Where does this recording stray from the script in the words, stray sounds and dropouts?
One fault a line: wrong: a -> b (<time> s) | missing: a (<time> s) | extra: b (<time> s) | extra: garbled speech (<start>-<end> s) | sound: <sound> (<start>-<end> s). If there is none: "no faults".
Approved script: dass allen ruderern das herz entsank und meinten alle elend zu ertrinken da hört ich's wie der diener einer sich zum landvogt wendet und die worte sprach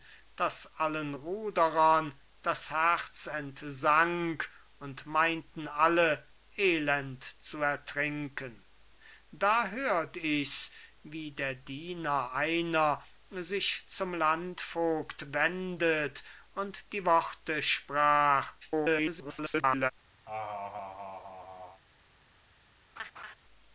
extra: garbled speech (18.6-19.9 s)
sound: laugh (20.3-21.8 s)
sound: laugh (23.0-23.4 s)